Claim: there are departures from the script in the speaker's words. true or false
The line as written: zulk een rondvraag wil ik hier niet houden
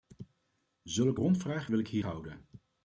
true